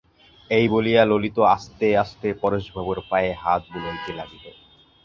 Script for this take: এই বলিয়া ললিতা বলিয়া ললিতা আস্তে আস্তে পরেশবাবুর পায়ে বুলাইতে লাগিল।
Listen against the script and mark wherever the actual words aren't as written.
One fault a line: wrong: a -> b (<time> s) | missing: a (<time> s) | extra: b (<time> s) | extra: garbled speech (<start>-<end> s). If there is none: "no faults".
missing: বলিয়া ললিতা (1.4 s)
extra: হাত (3.4 s)